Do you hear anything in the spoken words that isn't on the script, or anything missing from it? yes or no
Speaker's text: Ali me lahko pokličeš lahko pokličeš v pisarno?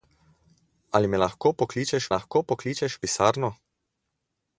no